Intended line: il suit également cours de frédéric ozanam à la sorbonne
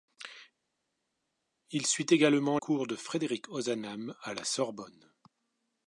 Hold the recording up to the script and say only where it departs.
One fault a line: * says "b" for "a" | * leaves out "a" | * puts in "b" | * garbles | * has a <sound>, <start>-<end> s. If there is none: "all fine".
all fine